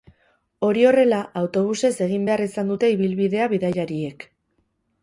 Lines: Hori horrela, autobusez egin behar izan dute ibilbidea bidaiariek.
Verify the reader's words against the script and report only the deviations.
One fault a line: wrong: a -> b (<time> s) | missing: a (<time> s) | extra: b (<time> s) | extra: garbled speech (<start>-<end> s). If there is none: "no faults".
no faults